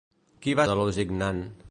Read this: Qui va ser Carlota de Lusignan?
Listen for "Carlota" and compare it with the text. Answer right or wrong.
wrong